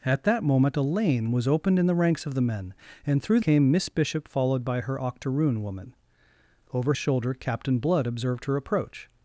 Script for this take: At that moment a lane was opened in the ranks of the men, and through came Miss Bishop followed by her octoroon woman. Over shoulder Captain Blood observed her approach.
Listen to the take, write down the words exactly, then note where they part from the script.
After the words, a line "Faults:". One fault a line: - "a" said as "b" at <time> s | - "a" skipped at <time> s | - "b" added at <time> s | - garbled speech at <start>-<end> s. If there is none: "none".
At that moment a lane was opened in the ranks of the men, and through came Miss Bishop followed by her octoroon woman. Over shoulder Captain Blood observed her approach.
Faults:
none